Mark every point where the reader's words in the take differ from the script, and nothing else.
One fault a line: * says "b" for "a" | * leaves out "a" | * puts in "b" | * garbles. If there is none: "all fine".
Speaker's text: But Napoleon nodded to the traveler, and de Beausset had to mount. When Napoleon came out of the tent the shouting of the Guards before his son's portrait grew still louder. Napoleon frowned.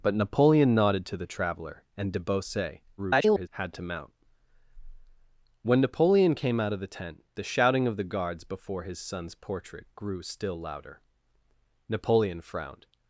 * garbles